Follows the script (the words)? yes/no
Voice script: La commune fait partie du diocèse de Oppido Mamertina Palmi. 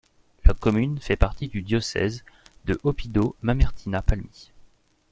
yes